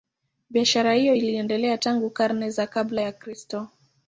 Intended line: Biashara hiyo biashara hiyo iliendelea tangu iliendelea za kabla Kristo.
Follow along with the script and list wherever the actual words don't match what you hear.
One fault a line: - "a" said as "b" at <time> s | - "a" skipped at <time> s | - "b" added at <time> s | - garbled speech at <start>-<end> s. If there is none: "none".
- "biashara hiyo" skipped at 1.1 s
- "iliendelea" said as "karne" at 2.1 s
- "ya" added at 3.0 s